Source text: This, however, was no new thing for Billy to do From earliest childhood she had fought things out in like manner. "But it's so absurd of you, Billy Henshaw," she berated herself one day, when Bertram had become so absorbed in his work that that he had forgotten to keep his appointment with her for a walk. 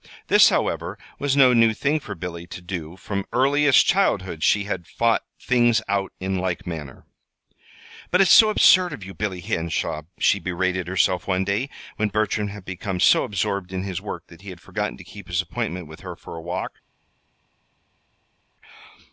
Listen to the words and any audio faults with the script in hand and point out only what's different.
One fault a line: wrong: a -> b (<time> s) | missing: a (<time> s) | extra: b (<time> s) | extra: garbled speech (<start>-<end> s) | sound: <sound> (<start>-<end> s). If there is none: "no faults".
missing: that (14.4 s)